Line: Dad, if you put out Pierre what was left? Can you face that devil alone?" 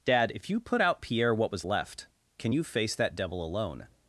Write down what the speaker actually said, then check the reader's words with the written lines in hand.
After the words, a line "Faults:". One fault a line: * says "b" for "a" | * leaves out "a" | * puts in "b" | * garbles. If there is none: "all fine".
Dad, if you put out Pierre what was left? Can you face that devil alone?"
Faults:
all fine